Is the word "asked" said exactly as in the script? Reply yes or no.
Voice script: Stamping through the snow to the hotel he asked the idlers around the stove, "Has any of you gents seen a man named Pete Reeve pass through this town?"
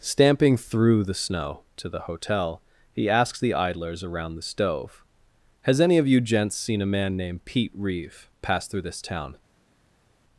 no